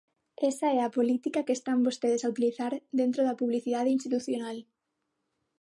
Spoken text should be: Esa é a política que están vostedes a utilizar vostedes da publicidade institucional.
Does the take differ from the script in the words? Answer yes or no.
yes